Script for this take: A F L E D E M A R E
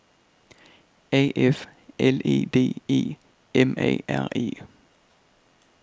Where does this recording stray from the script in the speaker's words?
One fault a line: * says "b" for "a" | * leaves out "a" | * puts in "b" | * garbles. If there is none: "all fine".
all fine